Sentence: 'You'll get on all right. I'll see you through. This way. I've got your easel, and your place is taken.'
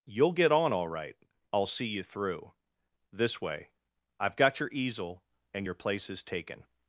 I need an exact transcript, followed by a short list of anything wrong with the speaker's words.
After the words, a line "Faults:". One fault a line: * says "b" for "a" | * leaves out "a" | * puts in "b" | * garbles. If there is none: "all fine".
'You'll get on all right. I'll see you through. This way. I've got your easel, and your place is taken.'
Faults:
all fine